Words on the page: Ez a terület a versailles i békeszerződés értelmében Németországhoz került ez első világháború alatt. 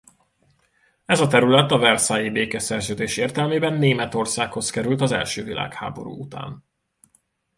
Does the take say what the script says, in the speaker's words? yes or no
no